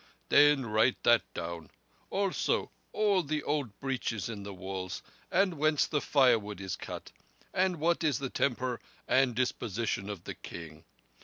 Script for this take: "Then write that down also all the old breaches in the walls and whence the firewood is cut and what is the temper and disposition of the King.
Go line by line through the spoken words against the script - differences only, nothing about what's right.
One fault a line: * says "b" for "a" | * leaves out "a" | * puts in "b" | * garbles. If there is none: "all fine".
all fine